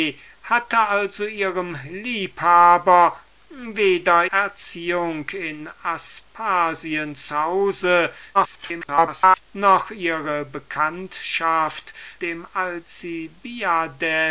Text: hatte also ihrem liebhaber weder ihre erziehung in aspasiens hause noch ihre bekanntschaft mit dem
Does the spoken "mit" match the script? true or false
false